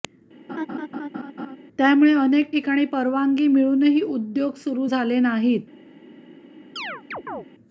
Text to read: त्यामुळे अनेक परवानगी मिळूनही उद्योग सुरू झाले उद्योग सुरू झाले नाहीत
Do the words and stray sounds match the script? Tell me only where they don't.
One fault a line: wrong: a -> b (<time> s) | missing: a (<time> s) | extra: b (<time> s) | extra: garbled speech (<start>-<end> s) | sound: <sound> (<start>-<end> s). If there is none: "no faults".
sound: laugh (0.5-1.6 s)
extra: ठिकाणी (2.5 s)
missing: उद्योग सुरू झाले (5.2 s)
sound: chirp (6.8-7.5 s)